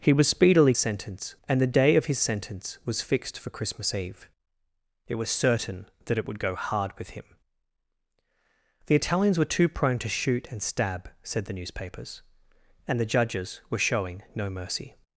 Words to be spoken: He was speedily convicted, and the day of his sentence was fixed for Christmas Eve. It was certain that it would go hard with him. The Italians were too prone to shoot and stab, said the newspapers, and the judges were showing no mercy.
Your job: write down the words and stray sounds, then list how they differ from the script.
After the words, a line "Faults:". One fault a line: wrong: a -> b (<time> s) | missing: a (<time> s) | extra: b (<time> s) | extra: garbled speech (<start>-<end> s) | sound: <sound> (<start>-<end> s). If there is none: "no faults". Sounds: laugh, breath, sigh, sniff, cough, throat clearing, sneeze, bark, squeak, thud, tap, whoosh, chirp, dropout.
He was speedily sentence, and the day of his sentence was fixed for Christmas Eve. It was certain that it would go hard with him. The Italians were too prone to shoot and stab, said the newspapers, and the judges were showing no mercy.
Faults:
wrong: convicted -> sentence (0.8 s)